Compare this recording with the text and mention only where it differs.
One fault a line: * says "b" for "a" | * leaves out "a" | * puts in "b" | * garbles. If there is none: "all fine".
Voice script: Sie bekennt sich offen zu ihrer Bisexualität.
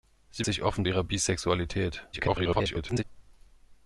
* leaves out "bekennt"
* leaves out "zu"
* garbles